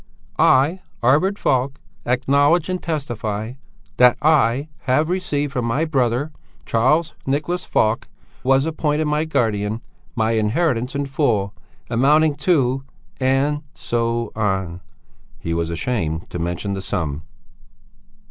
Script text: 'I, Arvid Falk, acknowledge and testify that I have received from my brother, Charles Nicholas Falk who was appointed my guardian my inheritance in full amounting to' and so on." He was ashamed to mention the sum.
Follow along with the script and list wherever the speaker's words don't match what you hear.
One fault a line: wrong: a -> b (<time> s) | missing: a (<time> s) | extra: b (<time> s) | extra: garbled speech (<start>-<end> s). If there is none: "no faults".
missing: who (8.1 s)